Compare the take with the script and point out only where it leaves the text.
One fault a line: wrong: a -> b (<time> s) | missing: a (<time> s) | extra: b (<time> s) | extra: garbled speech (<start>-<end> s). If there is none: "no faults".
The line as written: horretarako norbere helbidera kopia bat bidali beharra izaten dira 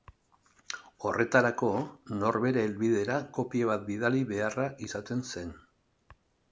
wrong: dira -> zen (5.3 s)